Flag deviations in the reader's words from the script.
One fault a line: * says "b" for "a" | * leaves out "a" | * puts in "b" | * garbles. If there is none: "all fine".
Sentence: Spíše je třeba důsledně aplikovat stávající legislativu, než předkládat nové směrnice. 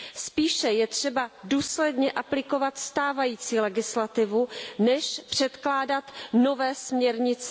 all fine